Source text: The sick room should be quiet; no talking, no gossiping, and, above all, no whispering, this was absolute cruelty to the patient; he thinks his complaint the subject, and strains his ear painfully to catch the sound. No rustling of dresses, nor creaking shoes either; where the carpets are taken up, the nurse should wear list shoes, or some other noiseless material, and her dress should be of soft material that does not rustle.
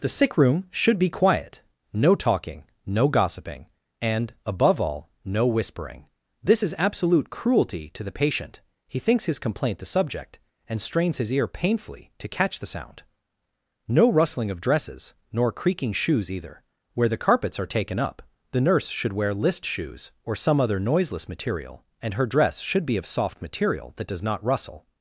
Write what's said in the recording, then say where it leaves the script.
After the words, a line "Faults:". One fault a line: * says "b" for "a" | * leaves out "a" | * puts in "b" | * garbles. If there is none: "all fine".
The sick room should be quiet; no talking, no gossiping, and, above all, no whispering, this is absolute cruelty to the patient; he thinks his complaint the subject, and strains his ear painfully to catch the sound. No rustling of dresses, nor creaking shoes either; where the carpets are taken up, the nurse should wear list shoes, or some other noiseless material, and her dress should be of soft material that does not rustle.
Faults:
* says "is" for "was"